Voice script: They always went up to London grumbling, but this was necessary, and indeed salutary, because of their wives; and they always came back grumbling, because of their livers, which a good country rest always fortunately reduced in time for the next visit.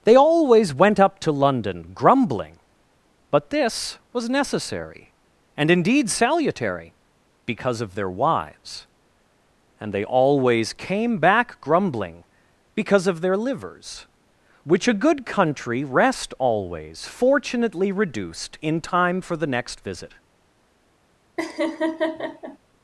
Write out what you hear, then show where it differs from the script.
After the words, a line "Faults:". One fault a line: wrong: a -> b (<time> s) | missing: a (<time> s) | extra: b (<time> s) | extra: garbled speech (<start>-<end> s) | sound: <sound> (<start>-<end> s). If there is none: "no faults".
They always went up to London grumbling, but this was necessary, and indeed salutary, because of their wives; and they always came back grumbling, because of their livers, which a good country rest always fortunately reduced in time for the next visit.
Faults:
sound: laugh (21.4-22.6 s)